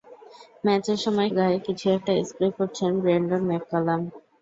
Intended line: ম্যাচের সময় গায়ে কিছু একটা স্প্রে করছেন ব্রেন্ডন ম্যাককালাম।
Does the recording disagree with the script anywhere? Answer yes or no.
no